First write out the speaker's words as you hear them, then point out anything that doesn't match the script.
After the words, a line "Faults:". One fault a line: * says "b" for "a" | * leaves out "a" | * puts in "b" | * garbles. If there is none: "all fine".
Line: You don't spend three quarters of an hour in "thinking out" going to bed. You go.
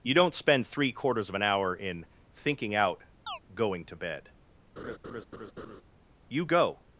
You don't spend three quarters of an hour in "thinking out" going to bed. You go.
Faults:
all fine